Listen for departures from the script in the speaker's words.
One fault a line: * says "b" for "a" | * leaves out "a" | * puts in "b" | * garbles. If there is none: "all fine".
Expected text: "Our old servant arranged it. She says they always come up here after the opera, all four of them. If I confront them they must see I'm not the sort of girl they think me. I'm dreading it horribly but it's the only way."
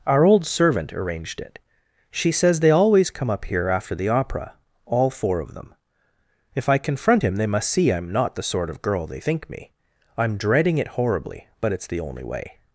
* says "him" for "them"